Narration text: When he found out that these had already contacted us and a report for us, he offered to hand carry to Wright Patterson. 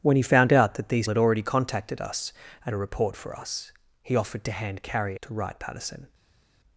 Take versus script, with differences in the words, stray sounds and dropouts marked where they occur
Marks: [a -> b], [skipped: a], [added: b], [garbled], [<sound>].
When he found out that these had already contacted us and a report for us, he offered to hand carry to Wright Patterson.